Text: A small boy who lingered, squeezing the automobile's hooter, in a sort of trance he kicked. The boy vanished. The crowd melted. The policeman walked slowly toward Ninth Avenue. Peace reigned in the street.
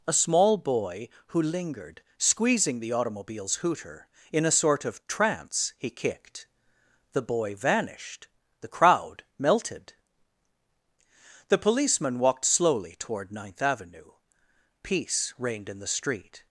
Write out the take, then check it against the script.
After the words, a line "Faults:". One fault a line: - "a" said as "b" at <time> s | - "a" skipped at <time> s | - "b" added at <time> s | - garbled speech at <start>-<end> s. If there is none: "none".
A small boy who lingered, squeezing the automobile's hooter, in a sort of trance he kicked. The boy vanished. The crowd melted. The policeman walked slowly toward Ninth Avenue. Peace reigned in the street.
Faults:
none